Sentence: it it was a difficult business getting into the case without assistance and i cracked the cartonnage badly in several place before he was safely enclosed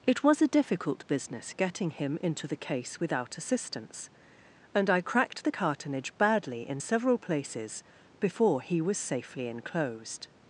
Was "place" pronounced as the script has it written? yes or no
no